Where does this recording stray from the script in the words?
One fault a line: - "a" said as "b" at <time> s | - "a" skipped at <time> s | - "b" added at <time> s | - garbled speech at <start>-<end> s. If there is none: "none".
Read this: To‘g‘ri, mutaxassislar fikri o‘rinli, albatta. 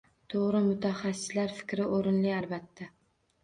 none